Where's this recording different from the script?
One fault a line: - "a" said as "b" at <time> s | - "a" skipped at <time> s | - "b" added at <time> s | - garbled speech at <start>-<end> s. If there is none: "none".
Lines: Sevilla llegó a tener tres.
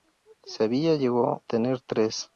- "a" skipped at 1.4 s